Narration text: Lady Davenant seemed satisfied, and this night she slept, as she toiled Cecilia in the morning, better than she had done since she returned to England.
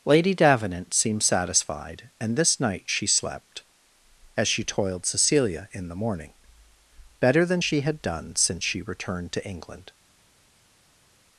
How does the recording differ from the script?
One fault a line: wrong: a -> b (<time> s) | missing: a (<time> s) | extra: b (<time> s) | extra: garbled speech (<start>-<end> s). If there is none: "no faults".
no faults